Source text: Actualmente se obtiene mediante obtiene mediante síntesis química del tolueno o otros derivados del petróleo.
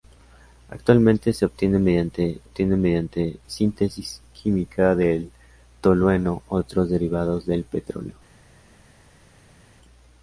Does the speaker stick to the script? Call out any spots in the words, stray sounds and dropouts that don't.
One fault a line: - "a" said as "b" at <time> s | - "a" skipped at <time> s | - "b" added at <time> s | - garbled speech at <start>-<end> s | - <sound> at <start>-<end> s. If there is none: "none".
none